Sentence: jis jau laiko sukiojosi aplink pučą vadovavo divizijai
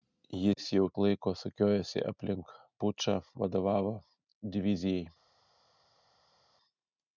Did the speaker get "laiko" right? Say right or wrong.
right